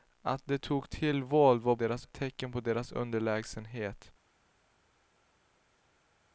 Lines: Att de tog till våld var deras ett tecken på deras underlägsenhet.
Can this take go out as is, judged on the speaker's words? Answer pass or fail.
pass